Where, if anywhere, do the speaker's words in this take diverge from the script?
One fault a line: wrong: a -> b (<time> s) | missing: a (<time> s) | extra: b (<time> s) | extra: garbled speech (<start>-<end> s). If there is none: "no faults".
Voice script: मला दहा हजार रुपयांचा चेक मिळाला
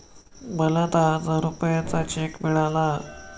no faults